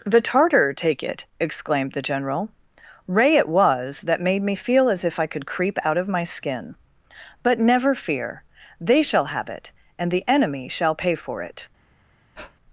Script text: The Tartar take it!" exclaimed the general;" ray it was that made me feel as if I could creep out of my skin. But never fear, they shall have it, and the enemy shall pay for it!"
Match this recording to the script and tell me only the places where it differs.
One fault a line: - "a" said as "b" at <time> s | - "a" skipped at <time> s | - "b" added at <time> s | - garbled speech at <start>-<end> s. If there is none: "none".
none